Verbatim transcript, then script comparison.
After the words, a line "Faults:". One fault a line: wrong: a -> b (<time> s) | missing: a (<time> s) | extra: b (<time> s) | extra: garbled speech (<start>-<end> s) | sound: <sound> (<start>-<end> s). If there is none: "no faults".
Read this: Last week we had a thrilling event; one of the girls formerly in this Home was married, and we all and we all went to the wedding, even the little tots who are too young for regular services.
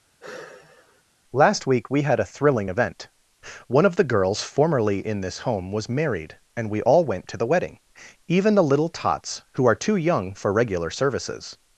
Last week we had a thrilling event; one of the girls formerly in this Home was married, and we all went to the wedding, even the little tots who are too young for regular services.
Faults:
sound: sigh (0.2-1.0 s)
missing: and we all (7.1 s)